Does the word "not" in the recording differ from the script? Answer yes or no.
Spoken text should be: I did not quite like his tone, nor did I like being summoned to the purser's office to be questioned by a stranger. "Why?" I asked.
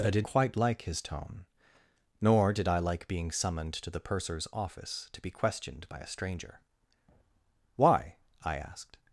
yes